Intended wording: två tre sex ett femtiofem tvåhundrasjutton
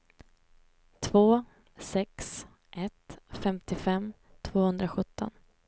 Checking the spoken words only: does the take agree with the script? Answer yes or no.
no